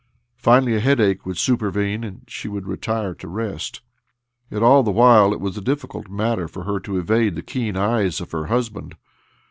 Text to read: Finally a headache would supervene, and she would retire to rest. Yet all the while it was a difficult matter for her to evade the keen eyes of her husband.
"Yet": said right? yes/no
yes